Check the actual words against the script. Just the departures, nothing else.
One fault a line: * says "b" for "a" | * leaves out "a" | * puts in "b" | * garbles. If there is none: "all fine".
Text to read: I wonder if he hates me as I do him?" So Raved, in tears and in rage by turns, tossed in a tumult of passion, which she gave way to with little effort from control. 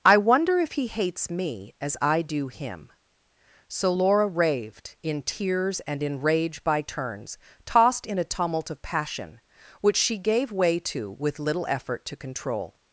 * puts in "Laura"
* says "to" for "from"